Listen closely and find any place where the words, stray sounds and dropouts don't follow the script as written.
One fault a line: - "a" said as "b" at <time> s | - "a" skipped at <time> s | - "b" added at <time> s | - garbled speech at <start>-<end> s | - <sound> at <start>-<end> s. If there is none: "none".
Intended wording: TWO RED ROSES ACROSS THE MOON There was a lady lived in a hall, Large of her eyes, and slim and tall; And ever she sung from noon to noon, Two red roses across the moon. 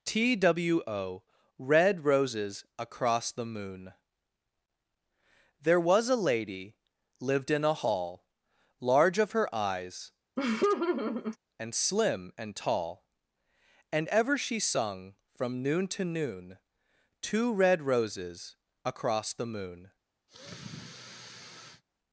- laugh at 10.4-11.4 s
- sigh at 20.3-21.8 s